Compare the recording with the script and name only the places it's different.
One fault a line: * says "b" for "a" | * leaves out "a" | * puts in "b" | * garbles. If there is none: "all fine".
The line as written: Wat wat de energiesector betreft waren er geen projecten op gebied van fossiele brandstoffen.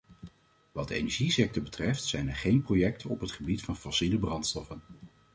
* leaves out "wat"
* says "zijn" for "waren"
* puts in "het"